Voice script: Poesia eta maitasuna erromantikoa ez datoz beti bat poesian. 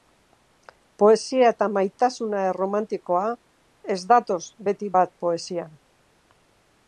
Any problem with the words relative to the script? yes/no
no